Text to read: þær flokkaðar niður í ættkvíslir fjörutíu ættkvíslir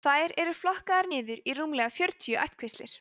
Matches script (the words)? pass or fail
fail